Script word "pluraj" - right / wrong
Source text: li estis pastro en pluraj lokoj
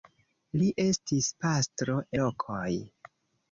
wrong